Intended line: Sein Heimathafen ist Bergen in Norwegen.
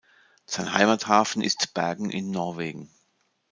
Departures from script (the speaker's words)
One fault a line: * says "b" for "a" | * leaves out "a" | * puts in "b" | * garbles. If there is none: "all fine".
all fine